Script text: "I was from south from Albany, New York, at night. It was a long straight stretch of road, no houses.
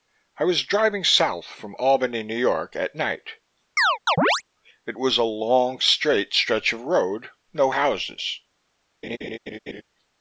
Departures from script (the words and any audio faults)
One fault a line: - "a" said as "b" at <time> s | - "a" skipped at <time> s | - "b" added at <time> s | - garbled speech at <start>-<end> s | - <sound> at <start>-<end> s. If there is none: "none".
- "from" said as "driving" at 0.6 s
- chirp at 3.8-4.4 s
- laugh at 9.0-9.8 s